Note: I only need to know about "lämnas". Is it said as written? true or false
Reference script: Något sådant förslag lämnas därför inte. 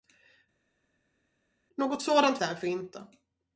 false